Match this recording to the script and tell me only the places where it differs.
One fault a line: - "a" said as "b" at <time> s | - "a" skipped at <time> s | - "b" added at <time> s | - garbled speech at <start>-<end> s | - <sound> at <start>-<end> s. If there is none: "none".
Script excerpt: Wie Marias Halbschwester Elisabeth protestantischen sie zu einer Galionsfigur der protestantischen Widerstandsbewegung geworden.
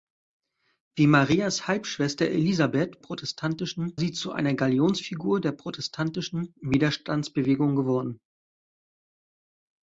none